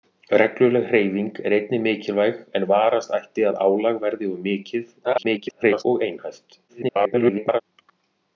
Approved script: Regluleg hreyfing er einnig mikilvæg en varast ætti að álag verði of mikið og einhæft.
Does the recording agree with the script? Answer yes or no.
no